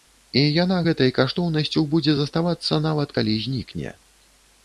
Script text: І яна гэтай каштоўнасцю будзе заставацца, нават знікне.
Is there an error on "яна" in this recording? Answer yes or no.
no